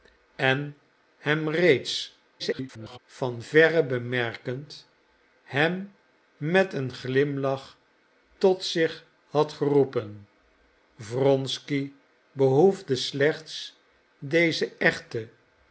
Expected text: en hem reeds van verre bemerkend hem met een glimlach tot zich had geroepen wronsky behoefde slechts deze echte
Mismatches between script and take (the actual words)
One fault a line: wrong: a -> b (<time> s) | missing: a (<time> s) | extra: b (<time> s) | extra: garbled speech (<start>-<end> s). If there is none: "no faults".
extra: garbled speech (2.4-3.0 s)